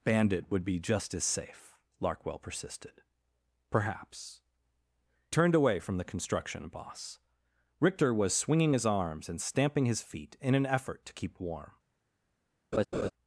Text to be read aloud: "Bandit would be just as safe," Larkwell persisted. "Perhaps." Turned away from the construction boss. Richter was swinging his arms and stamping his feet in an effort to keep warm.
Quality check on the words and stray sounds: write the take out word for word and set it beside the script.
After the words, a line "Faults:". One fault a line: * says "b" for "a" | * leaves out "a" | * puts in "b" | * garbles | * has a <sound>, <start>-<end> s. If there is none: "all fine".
"Bandit would be just as safe," Larkwell persisted. "Perhaps." Turned away from the construction boss. Richter was swinging his arms and stamping his feet in an effort to keep warm.
Faults:
* has a laugh, 12.7-13.1 s